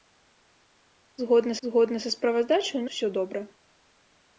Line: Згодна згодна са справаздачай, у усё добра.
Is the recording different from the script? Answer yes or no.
no